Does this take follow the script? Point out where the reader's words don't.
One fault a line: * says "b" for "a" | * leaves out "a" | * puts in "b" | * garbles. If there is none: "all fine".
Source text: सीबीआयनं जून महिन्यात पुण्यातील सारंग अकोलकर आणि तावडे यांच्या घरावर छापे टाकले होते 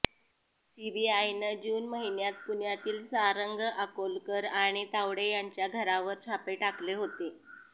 all fine